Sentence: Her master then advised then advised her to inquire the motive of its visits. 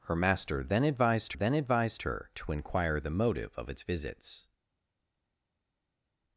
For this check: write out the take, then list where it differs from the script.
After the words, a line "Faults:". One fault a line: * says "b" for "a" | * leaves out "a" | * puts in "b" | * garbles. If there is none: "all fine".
Her master then advised then advised her to inquire the motive of its visits.
Faults:
all fine